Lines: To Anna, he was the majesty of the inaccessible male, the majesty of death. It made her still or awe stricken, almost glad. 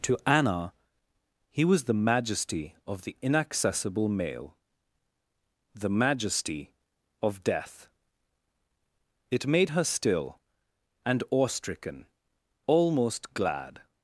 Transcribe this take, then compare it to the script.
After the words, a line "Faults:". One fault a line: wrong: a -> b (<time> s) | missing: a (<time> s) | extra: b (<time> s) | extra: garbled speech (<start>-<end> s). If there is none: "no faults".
To Anna, he was the majesty of the inaccessible male, the majesty of death. It made her still and awe stricken, almost glad.
Faults:
wrong: or -> and (11.1 s)